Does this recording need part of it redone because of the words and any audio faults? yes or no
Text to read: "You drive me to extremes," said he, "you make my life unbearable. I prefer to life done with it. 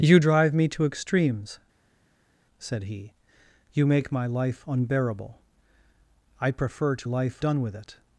no